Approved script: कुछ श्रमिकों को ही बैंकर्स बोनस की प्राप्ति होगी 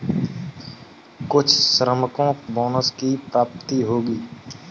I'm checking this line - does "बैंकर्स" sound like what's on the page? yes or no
no